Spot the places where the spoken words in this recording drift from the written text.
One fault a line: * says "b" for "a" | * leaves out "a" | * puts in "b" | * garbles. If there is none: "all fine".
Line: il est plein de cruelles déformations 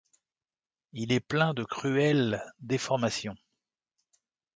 all fine